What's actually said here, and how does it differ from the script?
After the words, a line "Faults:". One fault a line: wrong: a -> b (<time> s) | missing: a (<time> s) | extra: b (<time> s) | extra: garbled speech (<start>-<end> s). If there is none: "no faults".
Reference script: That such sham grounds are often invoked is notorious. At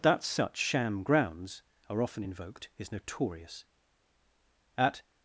That such sham grounds are often invoked is notorious. At
Faults:
no faults